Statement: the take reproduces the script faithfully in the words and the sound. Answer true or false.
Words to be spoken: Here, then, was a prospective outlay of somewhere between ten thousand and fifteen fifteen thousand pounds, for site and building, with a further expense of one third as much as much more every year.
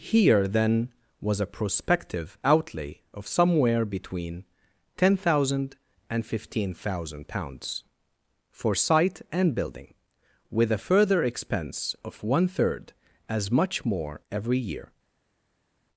false